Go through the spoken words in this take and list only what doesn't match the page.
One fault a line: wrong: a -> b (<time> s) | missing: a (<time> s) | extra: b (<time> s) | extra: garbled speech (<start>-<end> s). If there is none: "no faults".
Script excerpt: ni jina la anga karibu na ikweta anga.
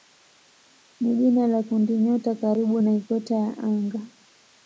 wrong: anga -> kundinyota (1.6 s)
extra: ya (3.4 s)